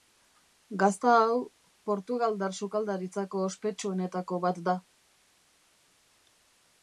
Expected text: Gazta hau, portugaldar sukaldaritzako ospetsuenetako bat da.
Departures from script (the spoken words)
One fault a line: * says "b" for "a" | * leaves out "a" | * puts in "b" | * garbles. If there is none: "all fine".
all fine